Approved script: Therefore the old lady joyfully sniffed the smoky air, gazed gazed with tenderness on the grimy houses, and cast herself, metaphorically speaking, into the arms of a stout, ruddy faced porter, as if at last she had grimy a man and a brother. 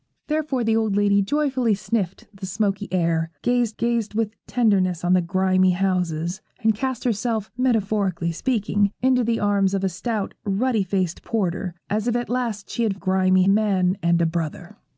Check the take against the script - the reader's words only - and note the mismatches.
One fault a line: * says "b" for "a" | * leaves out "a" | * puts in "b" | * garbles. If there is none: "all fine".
all fine